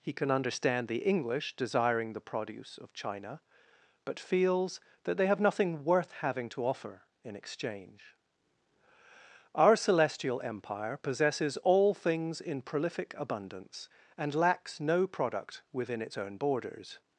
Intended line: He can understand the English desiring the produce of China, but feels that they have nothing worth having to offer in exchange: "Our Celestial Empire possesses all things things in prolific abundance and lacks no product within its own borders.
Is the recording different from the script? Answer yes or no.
yes